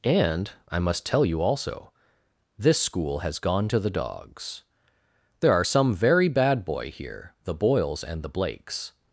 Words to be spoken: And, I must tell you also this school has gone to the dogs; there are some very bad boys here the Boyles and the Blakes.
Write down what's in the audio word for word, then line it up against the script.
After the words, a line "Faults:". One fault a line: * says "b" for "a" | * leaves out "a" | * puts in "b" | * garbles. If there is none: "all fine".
And, I must tell you also this school has gone to the dogs; there are some very bad boy here the Boyles and the Blakes.
Faults:
* says "boy" for "boys"